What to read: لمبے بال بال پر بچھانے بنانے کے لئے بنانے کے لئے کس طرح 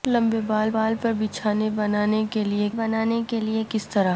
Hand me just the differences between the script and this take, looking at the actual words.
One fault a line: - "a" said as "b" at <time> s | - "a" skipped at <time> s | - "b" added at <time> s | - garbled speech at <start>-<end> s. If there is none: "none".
none